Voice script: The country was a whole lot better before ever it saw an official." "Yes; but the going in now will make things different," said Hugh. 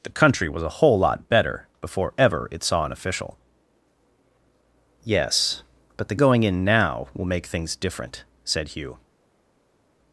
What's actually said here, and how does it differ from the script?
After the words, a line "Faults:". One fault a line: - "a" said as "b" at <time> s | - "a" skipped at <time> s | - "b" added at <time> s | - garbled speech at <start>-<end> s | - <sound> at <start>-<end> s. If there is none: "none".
The country was a whole lot better before ever it saw an official." "Yes; but the going in now will make things different," said Hugh.
Faults:
none